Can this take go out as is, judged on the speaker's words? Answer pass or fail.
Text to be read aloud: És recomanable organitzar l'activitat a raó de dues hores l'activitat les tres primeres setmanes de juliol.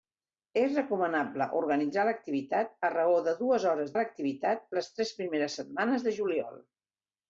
pass